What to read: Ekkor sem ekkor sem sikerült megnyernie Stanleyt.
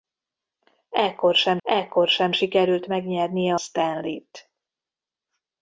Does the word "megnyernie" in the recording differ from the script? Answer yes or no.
no